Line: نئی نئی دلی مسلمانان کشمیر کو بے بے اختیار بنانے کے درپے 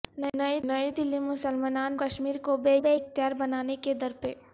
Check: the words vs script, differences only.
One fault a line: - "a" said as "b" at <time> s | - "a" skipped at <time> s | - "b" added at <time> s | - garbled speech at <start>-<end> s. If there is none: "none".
none